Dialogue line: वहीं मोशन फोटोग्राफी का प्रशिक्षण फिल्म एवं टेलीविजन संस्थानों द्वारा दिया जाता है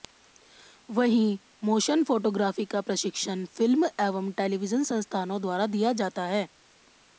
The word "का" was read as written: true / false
true